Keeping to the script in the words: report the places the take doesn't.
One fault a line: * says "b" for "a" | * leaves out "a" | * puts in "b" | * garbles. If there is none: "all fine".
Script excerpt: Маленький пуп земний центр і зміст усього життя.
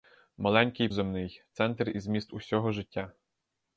* leaves out "пуп"